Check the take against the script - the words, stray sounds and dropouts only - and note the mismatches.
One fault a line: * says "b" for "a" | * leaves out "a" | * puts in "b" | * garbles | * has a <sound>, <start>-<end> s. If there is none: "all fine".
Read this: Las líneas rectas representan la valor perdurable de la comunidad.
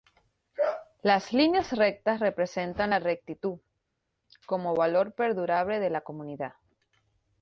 * puts in "rectitud como"